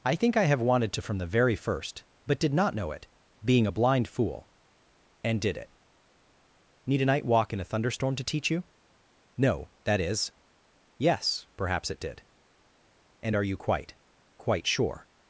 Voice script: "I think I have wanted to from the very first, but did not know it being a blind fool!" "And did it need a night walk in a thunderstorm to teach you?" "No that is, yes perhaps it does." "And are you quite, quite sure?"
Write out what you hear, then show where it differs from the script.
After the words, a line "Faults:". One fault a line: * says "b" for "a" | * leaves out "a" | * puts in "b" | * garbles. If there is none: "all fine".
"I think I have wanted to from the very first, but did not know it being a blind fool!" "And did it need a night walk in a thunderstorm to teach you?" "No that is, yes perhaps it did." "And are you quite, quite sure?"
Faults:
* says "did" for "does"